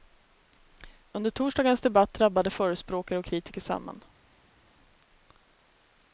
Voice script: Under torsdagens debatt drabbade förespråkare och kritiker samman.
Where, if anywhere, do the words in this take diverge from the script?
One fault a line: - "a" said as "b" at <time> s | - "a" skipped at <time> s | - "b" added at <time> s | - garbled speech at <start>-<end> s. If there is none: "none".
none